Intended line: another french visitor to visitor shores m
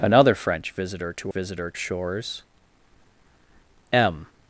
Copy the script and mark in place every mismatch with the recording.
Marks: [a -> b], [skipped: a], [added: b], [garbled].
another french visitor to visitor shores m